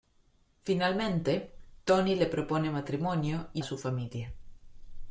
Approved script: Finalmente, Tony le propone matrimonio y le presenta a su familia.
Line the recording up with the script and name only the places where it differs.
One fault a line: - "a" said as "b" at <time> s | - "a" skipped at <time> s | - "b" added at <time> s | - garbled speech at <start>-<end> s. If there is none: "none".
- "le presenta" skipped at 3.6 s